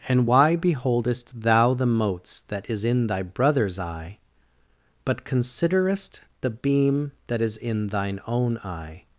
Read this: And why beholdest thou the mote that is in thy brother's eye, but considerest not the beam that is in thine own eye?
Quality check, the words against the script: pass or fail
fail